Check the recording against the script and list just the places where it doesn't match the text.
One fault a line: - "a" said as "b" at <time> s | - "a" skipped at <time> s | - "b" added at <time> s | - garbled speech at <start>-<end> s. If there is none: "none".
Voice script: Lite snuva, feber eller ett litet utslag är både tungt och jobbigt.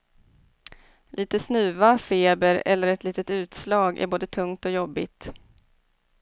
none